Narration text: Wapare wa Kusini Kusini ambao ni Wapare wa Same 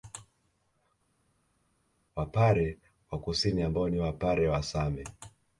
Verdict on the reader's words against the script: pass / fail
fail